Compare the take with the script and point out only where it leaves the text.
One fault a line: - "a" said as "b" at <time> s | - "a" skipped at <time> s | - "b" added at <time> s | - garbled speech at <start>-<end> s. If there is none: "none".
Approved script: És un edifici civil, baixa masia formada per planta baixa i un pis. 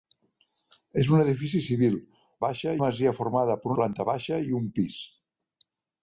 none